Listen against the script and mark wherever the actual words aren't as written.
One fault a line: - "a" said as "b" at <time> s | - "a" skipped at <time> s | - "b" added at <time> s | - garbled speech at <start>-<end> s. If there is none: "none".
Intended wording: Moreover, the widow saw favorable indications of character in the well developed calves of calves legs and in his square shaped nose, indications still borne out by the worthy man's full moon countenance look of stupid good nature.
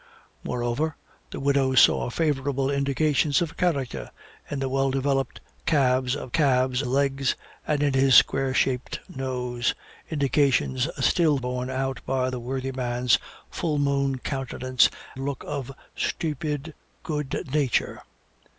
none